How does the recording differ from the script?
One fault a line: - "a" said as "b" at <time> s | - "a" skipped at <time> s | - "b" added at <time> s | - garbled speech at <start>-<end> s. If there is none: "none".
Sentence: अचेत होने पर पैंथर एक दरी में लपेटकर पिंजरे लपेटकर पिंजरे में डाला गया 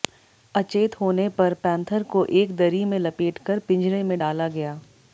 - "को" added at 2.1 s
- "लपेटकर पिंजरे" skipped at 4.0 s